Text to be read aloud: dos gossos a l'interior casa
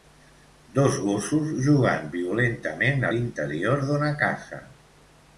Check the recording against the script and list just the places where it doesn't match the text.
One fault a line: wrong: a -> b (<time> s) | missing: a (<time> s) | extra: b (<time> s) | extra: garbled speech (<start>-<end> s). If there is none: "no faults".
extra: jugant violentament (1.6 s)
extra: d'una (3.9 s)